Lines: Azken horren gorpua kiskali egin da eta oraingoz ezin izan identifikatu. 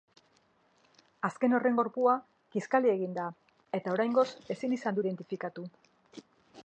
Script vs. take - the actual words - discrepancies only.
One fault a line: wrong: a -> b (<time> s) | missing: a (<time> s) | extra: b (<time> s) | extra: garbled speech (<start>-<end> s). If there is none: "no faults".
no faults